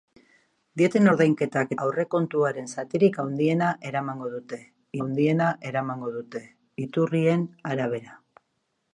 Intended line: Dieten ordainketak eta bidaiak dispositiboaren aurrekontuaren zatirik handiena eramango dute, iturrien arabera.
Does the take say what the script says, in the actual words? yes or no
no